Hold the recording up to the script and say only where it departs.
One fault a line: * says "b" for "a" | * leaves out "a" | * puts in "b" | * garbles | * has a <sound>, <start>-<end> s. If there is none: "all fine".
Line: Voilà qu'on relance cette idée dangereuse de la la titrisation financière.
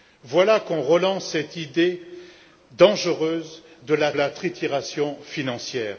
all fine